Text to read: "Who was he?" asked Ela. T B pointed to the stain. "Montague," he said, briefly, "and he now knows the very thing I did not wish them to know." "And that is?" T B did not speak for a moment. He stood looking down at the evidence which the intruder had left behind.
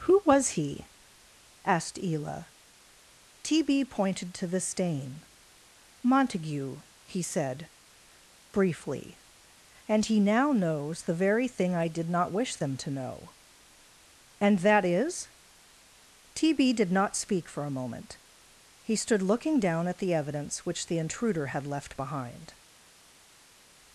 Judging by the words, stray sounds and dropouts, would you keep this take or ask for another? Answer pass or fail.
pass